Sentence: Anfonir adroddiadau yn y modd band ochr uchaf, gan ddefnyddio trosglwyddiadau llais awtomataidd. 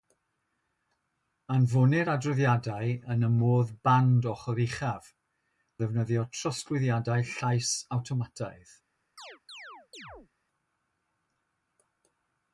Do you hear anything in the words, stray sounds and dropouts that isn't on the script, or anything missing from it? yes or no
yes